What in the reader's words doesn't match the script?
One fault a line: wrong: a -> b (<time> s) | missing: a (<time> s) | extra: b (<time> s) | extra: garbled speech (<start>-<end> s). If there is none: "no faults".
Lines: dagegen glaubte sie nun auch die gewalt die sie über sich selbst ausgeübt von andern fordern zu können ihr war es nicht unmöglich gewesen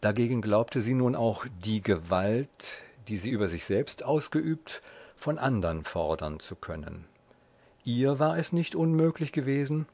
no faults